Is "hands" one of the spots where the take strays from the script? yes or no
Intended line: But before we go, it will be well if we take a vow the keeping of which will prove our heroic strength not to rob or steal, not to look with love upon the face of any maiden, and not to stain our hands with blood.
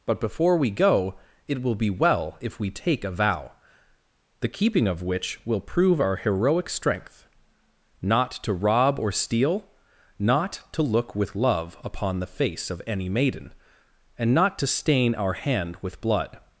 yes